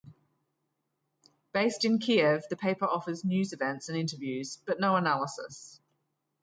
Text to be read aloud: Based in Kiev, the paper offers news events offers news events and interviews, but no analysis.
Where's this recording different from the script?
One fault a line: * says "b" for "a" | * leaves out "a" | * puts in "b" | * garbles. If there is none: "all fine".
* leaves out "offers news events"